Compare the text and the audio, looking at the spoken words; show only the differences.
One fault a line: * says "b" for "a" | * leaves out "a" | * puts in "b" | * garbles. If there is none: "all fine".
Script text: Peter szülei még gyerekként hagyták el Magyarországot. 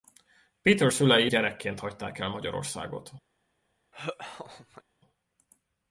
* leaves out "még"